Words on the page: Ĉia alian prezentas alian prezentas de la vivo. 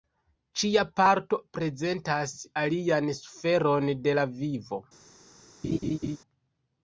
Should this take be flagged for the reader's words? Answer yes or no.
yes